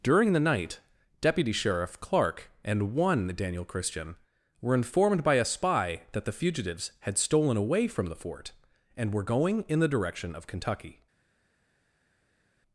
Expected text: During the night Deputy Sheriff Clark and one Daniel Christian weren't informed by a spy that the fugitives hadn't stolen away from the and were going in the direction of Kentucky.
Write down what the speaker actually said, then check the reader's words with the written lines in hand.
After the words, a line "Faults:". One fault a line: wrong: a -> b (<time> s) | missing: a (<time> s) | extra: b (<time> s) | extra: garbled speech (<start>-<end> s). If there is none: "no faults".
During the night Deputy Sheriff Clark and one Daniel Christian were informed by a spy that the fugitives had stolen away from the fort and were going in the direction of Kentucky.
Faults:
wrong: weren't -> were (4.6 s)
wrong: hadn't -> had (7.0 s)
extra: fort (8.2 s)